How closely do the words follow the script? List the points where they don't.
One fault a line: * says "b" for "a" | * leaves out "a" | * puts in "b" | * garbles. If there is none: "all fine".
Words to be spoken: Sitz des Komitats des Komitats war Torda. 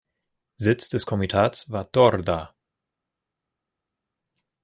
* leaves out "des Komitats"